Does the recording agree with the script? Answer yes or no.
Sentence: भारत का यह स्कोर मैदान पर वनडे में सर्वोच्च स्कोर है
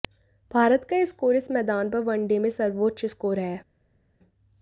no